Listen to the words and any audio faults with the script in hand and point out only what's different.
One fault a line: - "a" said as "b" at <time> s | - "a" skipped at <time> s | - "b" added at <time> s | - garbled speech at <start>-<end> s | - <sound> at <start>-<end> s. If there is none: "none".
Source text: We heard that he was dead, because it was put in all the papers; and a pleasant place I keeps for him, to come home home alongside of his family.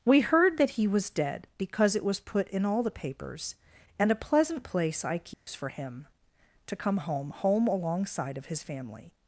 - dropout at 5.3-5.5 s